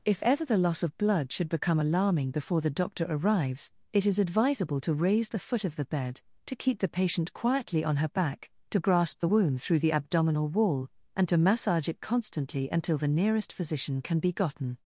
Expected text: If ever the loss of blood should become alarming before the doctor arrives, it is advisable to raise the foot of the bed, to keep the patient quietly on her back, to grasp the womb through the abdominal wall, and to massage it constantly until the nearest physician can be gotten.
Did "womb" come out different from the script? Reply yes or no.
yes